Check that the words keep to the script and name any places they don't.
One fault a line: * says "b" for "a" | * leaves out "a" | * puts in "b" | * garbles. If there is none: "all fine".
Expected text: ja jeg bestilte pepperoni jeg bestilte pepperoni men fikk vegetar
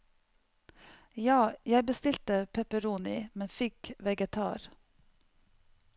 * leaves out "jeg bestilte pepperoni"